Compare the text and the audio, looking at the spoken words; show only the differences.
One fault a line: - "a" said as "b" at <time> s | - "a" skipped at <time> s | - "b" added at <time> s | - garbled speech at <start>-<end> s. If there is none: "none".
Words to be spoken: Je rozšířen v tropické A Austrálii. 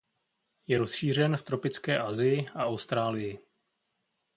- "Asii" added at 2.0 s